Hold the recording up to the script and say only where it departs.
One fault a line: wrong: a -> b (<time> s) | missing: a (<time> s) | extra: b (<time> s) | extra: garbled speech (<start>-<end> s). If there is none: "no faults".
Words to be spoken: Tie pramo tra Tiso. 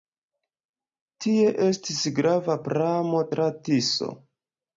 extra: estis grava (1.7 s)